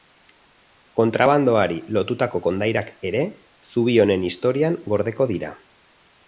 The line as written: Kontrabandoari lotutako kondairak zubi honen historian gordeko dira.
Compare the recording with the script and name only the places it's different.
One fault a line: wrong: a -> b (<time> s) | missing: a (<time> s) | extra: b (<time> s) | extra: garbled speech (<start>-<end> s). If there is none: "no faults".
extra: ere (3.1 s)